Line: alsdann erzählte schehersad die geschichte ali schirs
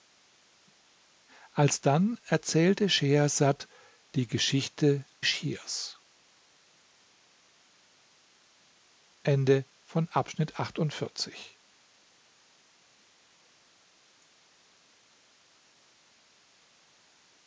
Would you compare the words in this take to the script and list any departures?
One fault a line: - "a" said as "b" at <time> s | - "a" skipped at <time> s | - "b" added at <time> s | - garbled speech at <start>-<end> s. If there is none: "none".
- "ali" skipped at 5.1 s